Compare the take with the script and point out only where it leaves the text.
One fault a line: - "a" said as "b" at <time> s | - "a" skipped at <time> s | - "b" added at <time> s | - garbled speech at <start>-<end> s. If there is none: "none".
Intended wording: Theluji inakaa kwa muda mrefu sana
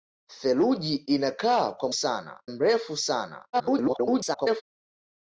- "muda" said as "sana" at 1.9 s
- garbled speech at 3.5-4.6 s